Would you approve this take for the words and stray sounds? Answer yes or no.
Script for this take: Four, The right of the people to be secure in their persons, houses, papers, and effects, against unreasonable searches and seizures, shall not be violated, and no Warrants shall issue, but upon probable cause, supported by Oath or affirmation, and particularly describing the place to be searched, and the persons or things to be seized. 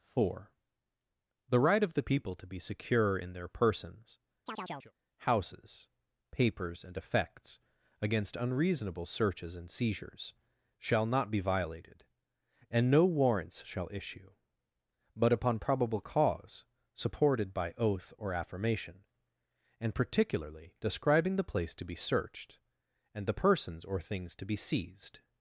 no